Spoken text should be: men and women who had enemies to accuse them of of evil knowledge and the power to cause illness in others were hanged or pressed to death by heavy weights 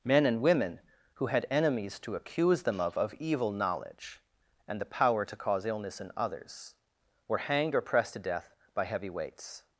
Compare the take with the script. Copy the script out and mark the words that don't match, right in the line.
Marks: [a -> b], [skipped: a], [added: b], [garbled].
men and women who had enemies to accuse them of of evil knowledge and the power to cause illness in others were hanged or pressed to death by heavy weights